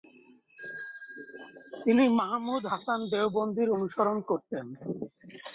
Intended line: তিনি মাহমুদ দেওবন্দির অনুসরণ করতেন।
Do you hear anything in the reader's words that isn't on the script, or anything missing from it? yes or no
yes